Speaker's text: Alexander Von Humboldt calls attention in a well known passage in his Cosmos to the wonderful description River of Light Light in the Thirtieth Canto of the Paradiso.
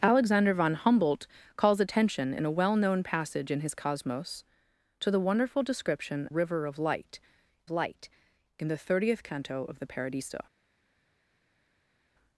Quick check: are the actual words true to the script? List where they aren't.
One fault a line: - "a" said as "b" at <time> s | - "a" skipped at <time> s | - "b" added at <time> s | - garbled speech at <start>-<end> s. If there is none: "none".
none